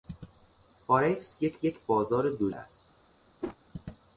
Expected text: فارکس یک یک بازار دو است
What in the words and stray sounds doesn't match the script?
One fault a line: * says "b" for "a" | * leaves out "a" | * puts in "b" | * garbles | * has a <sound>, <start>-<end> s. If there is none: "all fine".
* has a whoosh, 3.4-3.6 s